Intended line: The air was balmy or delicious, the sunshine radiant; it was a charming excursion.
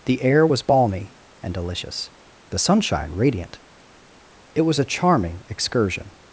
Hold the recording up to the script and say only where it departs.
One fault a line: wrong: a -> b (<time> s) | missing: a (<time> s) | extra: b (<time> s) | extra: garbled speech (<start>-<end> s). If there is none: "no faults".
wrong: or -> and (1.4 s)